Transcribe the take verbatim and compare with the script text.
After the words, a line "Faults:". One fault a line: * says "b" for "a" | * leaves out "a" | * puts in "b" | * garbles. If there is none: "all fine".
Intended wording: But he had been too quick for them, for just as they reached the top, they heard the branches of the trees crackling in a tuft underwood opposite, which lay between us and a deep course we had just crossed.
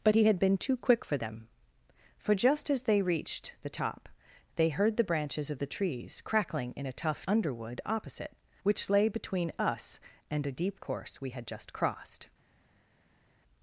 But he had been too quick for them, for just as they reached the top, they heard the branches of the trees crackling in a tuft underwood opposite, which lay between us and a deep course we had just crossed.
Faults:
all fine